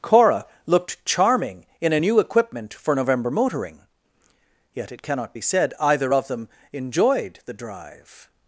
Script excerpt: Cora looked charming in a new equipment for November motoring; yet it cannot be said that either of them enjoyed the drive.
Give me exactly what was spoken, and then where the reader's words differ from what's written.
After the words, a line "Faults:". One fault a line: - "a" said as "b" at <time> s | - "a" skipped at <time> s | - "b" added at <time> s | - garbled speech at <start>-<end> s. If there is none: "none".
Cora looked charming in a new equipment for November motoring; yet it cannot be said either of them enjoyed the drive.
Faults:
- "that" skipped at 5.7 s